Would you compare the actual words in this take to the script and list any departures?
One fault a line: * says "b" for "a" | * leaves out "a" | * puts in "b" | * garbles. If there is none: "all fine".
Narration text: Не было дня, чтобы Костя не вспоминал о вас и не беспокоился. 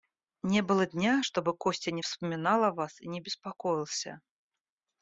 all fine